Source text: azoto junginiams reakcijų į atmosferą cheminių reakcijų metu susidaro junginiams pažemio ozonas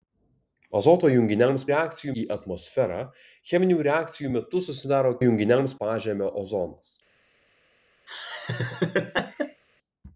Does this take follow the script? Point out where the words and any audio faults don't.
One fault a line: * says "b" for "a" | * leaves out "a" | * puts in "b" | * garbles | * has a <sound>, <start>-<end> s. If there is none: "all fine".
* has a laugh, 8.1-9.6 s